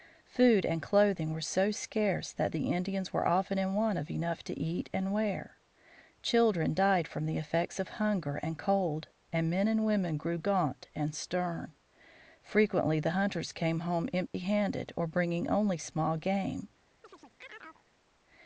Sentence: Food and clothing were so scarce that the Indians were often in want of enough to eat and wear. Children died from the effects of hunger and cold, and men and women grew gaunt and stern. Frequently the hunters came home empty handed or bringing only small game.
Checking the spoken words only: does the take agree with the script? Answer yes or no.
yes